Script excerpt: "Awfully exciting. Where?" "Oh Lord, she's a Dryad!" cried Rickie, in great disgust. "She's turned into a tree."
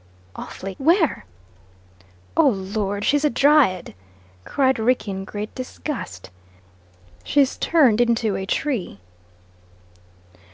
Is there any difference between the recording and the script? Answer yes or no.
yes